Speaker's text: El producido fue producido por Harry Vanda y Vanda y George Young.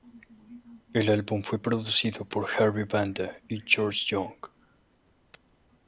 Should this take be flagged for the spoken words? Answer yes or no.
yes